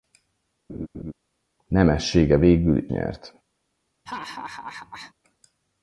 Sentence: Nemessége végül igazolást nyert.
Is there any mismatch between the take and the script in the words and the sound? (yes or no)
yes